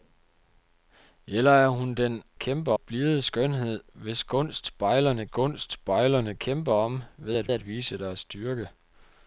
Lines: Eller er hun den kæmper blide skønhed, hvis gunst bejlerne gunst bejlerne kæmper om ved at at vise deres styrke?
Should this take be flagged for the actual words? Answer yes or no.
no